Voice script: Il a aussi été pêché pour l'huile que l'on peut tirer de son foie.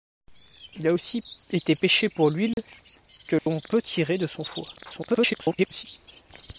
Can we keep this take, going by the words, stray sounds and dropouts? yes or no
no